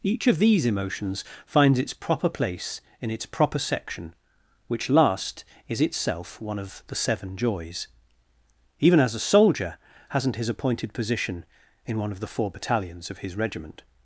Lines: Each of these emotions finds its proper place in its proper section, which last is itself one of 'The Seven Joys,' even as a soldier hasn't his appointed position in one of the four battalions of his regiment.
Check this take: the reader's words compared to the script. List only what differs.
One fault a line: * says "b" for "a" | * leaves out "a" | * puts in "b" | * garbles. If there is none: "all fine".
all fine